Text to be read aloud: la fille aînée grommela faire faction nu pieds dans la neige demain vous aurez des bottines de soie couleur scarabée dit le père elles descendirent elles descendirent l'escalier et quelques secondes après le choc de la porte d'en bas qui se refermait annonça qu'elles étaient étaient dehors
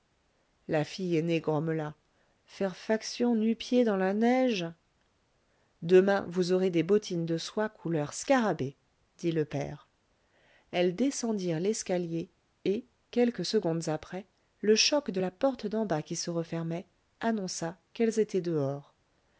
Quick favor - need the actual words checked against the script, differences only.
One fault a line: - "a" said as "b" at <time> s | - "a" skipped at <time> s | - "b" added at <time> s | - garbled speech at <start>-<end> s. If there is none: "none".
- "elles descendirent" skipped at 11.6 s
- "étaient" skipped at 18.4 s